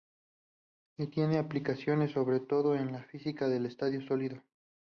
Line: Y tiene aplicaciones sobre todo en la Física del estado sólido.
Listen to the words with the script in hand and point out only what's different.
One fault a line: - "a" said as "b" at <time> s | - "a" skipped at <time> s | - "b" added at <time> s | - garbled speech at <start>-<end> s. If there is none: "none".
none